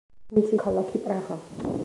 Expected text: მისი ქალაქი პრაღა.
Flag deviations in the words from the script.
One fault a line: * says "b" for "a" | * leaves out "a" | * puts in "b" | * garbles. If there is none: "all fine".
all fine